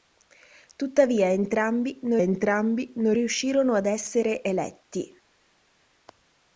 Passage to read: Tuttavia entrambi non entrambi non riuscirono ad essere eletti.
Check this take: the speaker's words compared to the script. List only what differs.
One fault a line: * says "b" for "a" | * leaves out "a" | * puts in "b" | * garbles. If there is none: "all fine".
all fine